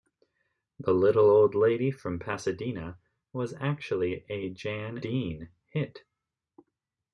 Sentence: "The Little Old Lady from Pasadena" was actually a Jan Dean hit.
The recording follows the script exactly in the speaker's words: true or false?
true